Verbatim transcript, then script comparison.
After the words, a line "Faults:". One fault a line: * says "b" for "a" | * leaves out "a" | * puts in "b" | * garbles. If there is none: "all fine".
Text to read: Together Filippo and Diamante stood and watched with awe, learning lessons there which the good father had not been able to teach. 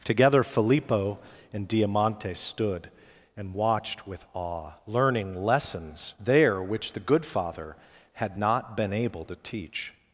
Together Filippo and Diamante stood and watched with awe, learning lessons there which the good father had not been able to teach.
Faults:
all fine